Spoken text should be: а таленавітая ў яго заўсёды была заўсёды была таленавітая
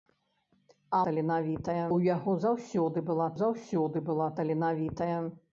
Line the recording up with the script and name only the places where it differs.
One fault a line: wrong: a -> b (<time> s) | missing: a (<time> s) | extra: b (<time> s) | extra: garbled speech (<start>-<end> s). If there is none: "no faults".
no faults